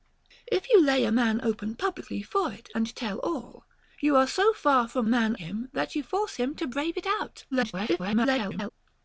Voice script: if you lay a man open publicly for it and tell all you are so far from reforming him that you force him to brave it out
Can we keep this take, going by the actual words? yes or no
no